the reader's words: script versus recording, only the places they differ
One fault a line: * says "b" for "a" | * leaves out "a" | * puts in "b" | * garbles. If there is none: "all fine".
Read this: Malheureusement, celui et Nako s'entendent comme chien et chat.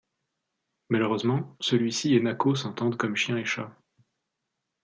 * puts in "ci"